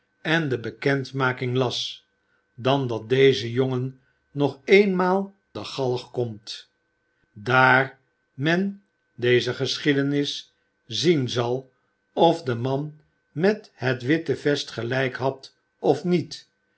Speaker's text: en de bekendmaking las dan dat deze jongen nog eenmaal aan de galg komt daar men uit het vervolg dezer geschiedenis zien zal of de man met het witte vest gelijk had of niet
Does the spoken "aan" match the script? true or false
false